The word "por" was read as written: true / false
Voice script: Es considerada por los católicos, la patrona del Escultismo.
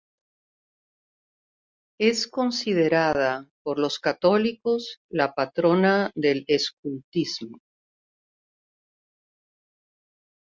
true